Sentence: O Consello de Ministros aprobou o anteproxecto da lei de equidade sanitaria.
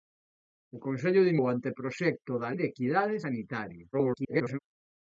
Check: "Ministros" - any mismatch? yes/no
yes